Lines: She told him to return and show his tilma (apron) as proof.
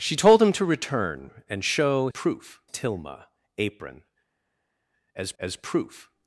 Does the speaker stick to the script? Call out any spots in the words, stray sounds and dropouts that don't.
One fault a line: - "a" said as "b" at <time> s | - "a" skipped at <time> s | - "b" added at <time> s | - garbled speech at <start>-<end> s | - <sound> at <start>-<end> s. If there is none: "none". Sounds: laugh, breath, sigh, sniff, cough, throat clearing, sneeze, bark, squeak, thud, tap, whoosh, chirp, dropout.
- "his" said as "proof" at 2.1 s
- "as" added at 5.4 s